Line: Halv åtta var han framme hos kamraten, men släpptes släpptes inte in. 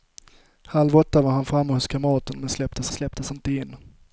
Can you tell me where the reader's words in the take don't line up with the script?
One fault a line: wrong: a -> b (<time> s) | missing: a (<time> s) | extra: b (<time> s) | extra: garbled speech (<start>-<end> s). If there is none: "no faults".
no faults